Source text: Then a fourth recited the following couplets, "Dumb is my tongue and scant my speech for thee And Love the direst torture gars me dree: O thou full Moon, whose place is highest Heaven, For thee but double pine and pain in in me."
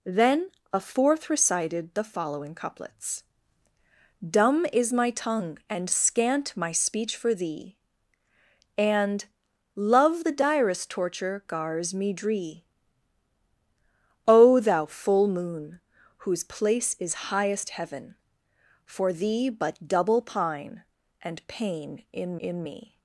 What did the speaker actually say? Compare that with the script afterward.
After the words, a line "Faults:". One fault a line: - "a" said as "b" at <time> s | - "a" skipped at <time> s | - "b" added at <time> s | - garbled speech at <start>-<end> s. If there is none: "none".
Then a fourth recited the following couplets, "Dumb is my tongue and scant my speech for thee And Love the direst torture gars me dree: O thou full Moon, whose place is highest Heaven, For thee but double pine and pain in in me."
Faults:
none